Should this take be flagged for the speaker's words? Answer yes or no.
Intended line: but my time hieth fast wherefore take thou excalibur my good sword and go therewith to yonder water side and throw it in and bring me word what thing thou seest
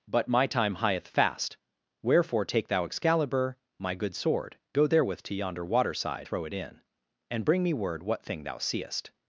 yes